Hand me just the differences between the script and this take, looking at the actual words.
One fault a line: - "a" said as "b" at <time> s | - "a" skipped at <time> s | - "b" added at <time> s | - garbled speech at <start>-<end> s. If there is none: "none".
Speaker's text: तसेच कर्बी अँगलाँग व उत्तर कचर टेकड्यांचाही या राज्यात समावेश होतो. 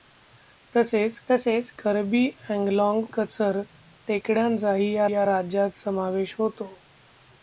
- "तसेच" added at 1.3 s
- "व उत्तर" skipped at 3.1 s
- "या" added at 5.1 s